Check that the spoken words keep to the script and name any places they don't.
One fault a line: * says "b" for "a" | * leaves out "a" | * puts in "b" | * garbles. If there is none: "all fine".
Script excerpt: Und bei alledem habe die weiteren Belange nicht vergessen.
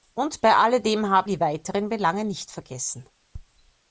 all fine